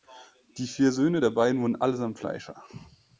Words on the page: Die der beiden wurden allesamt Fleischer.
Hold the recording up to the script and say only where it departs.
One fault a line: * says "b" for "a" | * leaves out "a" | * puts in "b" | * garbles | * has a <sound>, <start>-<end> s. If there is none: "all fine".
* puts in "vier Söhne"